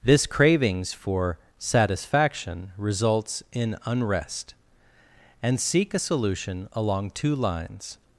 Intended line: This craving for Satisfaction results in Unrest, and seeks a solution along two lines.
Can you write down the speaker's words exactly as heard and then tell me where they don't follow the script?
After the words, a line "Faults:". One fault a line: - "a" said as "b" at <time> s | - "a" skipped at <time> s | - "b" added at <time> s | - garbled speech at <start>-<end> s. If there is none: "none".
This cravings for Satisfaction results in Unrest, and seek a solution along two lines.
Faults:
- "craving" said as "cravings" at 0.2 s
- "seeks" said as "seek" at 5.6 s